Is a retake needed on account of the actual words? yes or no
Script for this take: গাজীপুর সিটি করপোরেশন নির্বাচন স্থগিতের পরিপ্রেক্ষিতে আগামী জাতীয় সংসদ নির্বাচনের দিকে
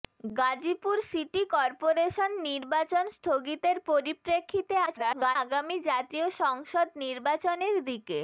yes